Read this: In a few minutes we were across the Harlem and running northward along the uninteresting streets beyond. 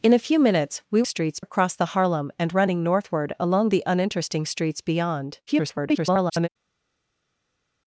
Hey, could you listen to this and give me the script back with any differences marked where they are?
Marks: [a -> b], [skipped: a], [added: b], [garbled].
In a few minutes we [were -> streets] across the Harlem and running northward along the uninteresting streets beyond. [garbled]